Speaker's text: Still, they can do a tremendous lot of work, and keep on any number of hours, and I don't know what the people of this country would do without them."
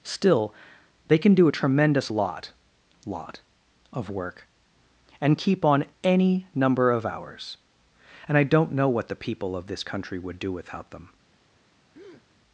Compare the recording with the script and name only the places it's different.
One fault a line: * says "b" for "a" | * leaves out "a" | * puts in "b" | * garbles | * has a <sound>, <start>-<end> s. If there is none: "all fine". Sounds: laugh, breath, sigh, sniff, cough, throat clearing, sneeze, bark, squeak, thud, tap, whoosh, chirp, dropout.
* puts in "lot"
* has a breath, 11.9-12.3 s